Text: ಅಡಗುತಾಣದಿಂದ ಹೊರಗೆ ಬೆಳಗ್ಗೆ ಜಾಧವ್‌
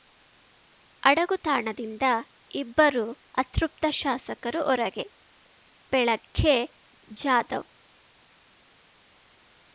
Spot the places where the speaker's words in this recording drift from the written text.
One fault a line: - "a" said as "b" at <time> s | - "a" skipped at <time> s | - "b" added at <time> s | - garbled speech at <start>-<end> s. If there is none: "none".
- "ಇಬ್ಬರು ಅತೃಪ್ತ ಶಾಸಕರು" added at 2.5 s